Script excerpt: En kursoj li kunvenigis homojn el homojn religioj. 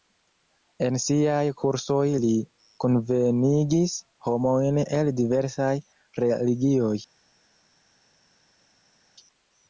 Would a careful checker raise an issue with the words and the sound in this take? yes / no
yes